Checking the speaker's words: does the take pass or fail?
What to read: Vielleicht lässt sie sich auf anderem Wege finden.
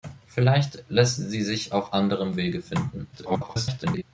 fail